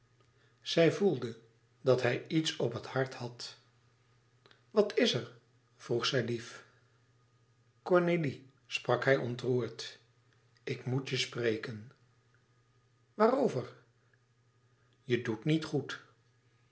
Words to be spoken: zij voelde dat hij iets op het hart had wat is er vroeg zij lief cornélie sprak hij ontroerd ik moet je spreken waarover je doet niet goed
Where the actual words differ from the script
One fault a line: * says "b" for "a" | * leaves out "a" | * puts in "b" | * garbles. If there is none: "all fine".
all fine